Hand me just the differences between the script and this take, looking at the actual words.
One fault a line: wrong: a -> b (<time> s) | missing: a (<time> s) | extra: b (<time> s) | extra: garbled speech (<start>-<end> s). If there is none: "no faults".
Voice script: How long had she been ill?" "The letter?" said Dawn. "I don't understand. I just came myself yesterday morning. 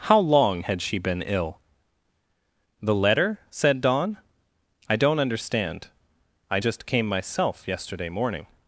no faults